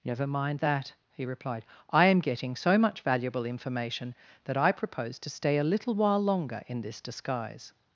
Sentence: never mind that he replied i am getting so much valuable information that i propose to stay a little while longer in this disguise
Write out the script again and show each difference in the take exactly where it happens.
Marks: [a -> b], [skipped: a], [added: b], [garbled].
never mind that he replied i am getting so much valuable information that i propose to stay a little while longer in this disguise